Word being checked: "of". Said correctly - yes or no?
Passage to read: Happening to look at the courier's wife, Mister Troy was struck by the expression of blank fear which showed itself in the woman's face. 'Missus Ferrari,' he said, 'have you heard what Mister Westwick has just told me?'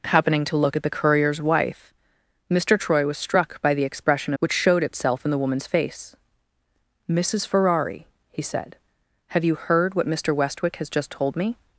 no